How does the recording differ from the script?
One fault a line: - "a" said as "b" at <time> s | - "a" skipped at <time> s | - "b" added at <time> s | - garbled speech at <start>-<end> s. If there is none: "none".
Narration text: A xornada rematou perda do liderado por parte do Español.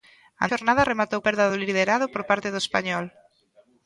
none